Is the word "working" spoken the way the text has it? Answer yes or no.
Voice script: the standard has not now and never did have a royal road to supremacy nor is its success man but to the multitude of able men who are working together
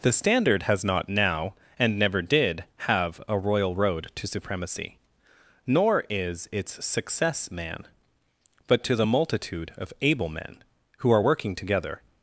yes